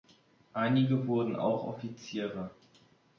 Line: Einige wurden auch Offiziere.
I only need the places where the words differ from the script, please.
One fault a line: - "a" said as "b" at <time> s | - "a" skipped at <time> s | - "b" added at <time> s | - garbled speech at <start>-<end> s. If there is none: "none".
none